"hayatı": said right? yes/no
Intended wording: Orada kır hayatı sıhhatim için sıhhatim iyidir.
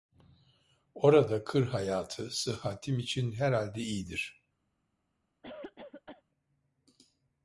yes